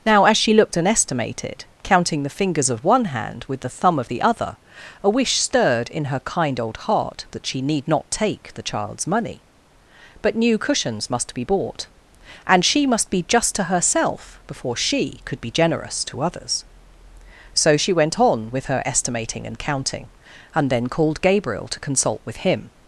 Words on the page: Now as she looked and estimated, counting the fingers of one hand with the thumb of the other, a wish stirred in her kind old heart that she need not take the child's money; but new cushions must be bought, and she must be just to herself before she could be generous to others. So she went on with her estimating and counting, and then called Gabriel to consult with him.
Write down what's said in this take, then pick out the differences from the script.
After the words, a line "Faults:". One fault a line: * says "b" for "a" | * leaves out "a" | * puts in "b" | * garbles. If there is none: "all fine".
Now as she looked and estimated, counting the fingers of one hand with the thumb of the other, a wish stirred in her kind old heart that she need not take the child's money; but new cushions must be bought, and she must be just to herself before she could be generous to others. So she went on with her estimating and counting, and then called Gabriel to consult with him.
Faults:
all fine